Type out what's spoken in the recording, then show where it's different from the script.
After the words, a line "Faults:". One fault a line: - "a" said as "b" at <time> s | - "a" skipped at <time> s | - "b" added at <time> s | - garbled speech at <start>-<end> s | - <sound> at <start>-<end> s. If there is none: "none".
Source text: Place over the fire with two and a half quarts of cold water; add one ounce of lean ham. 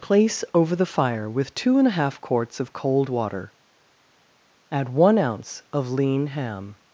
Place over the fire with two and a half quarts of cold water; add one ounce of lean ham.
Faults:
none